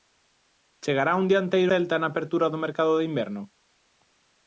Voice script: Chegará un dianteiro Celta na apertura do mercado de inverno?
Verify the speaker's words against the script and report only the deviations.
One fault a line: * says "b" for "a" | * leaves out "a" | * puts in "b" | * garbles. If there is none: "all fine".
all fine